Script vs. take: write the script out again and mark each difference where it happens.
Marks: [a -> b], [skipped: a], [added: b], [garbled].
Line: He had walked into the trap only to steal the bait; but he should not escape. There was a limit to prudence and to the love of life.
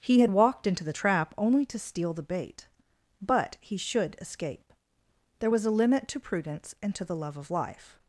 He had walked into the trap only to steal the bait; but he should [skipped: not] escape. There was a limit to prudence and to the love of life.